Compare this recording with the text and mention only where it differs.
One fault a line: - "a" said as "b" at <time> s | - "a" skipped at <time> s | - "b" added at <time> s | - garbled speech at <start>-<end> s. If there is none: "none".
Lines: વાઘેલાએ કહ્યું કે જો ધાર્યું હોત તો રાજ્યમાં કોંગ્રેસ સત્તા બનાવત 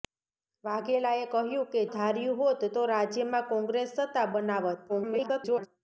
- "જો" skipped at 1.8 s
- garbled speech at 4.9-5.7 s